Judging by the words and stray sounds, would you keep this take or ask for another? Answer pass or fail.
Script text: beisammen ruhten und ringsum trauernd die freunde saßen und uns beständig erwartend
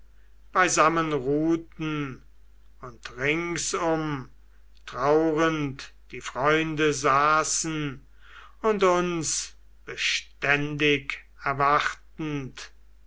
pass